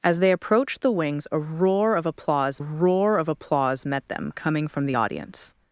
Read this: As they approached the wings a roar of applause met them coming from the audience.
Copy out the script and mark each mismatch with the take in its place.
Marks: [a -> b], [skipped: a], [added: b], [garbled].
As they approached the wings a roar of applause [added: roar of applause] met them coming from the audience.